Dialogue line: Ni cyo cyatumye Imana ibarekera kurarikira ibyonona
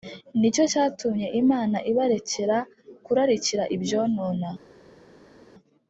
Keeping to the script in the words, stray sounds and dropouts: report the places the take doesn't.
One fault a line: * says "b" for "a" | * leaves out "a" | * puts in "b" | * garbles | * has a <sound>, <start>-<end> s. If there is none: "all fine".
all fine